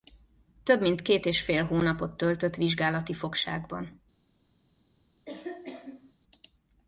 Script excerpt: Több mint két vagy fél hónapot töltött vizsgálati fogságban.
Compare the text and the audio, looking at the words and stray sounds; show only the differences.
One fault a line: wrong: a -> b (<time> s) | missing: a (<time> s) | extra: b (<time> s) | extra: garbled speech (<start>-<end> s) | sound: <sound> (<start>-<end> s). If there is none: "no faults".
wrong: vagy -> és (1.2 s)
sound: cough (5.3-6.1 s)